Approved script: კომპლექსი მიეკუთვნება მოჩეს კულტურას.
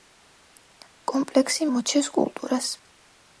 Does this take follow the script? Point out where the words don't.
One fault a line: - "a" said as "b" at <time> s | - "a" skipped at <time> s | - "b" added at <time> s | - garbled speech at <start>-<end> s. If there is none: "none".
- "მიეკუთვნება" skipped at 1.7 s